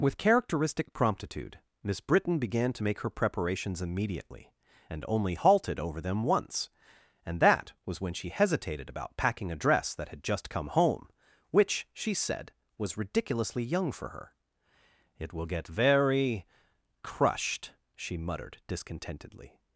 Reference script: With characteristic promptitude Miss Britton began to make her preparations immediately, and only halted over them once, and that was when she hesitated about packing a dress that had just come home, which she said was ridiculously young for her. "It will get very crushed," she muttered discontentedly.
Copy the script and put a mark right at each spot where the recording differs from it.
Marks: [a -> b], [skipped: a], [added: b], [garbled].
With characteristic promptitude Miss Britton began to make her preparations immediately, and only halted over them once, and that was when she hesitated about packing a dress that had just come home, which she said was ridiculously young for her. "It will get very crushed," she muttered discontentedly.